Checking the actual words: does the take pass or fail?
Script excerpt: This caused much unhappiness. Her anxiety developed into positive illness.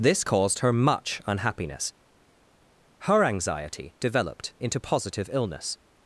fail